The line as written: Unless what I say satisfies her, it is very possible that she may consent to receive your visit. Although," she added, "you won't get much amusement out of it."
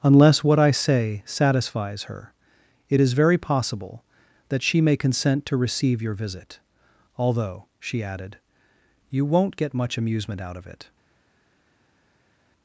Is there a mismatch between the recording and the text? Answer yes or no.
no